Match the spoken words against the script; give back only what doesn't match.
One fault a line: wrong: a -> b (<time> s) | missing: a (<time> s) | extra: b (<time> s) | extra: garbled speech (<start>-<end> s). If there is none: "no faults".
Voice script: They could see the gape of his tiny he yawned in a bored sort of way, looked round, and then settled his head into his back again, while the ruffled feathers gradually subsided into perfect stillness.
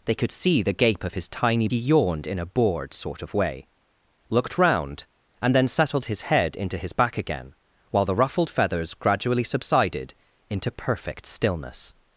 no faults